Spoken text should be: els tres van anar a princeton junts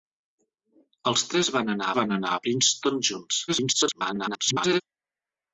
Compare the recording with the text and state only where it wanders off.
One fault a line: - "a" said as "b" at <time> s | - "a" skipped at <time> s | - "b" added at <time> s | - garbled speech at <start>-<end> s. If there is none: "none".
- "van anar" added at 2.0 s
- garbled speech at 3.5-4.8 s